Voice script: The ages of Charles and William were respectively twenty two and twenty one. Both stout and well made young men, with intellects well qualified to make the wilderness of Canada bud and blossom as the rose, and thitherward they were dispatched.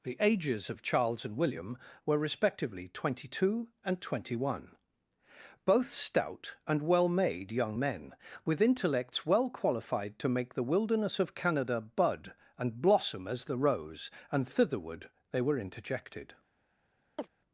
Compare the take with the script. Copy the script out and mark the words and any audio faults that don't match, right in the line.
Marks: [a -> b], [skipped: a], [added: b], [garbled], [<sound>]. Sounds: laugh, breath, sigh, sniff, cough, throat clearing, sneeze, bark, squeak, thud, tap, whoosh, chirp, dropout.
The ages of Charles and William were respectively twenty two and twenty one. Both stout and well made young men, with intellects well qualified to make the wilderness of Canada bud and blossom as the rose, and thitherward they were [dispatched. -> interjected] [chirp]